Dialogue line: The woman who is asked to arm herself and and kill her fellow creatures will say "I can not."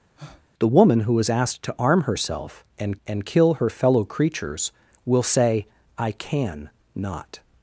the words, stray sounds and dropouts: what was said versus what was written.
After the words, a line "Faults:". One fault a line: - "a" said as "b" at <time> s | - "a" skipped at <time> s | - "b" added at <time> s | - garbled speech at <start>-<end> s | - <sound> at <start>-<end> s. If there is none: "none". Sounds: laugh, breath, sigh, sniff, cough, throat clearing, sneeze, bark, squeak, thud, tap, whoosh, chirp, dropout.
The woman who is asked to arm herself and and kill her fellow creatures will say "I can not."
Faults:
- breath at 0.2-0.5 s